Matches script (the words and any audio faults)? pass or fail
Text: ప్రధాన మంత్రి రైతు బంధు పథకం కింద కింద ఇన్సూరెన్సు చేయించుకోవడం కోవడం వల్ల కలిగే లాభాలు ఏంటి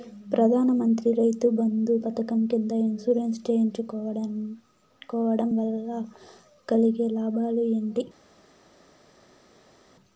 fail